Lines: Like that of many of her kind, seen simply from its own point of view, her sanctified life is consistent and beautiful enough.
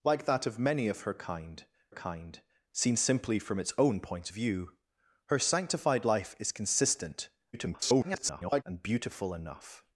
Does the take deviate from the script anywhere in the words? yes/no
yes